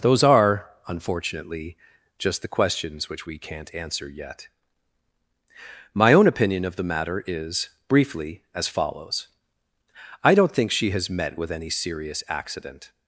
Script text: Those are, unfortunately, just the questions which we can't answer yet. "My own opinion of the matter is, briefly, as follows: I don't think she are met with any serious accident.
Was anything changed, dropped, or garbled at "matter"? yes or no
no